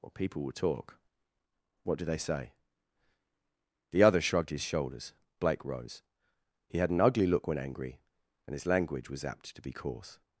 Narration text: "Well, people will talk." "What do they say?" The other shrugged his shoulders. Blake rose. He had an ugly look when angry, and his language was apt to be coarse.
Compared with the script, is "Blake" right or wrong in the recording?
right